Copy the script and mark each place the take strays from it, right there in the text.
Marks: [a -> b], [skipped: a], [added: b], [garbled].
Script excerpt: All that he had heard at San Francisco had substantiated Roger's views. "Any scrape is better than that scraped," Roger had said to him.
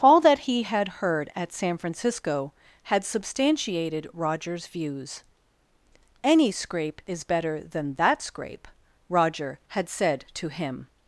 All that he had heard at San Francisco had substantiated Roger's views. "Any scrape is better than that [scraped," -> scrape] Roger had said to him.